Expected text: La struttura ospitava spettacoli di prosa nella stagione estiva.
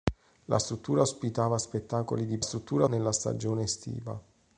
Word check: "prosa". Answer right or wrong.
wrong